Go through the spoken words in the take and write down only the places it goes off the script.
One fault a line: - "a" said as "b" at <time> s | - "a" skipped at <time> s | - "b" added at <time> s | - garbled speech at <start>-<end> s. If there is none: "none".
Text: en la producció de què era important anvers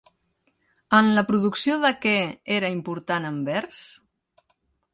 none